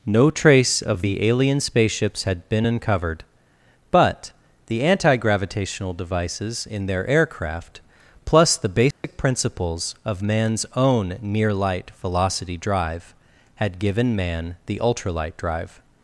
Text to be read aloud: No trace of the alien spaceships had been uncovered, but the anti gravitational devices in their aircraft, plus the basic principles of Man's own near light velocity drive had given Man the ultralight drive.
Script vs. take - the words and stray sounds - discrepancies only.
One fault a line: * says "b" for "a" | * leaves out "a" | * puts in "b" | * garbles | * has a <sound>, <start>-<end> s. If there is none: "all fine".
* has a dropout, 8.9-9.0 s